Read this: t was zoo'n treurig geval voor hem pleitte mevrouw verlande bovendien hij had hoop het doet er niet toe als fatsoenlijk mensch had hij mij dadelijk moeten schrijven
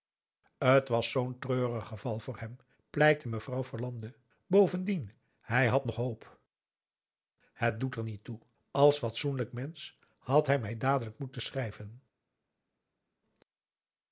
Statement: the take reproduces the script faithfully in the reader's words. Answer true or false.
false